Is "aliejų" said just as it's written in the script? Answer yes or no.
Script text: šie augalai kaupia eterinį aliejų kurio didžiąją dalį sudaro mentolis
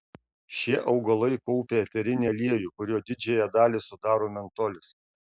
yes